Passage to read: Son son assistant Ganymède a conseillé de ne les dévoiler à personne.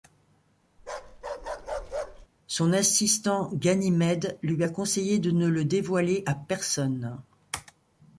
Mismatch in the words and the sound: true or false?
true